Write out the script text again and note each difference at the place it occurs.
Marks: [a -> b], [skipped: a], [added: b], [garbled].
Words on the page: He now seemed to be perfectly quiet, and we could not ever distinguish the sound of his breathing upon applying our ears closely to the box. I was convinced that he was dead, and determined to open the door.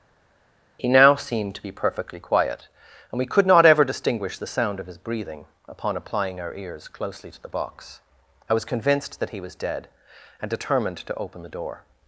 He now seemed to be perfectly quiet, and we could not ever distinguish the sound of his breathing upon applying our ears closely to the box. I was convinced that he was dead, and determined to open the door.